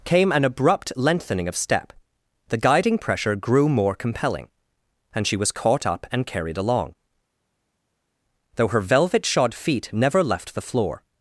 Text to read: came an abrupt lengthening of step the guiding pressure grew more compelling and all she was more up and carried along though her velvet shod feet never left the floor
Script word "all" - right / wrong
wrong